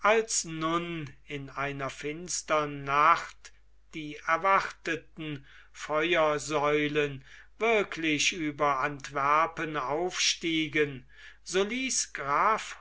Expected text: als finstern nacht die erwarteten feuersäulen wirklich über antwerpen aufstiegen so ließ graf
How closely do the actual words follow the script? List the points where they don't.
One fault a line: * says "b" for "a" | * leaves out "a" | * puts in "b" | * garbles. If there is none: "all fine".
* puts in "nun in einer"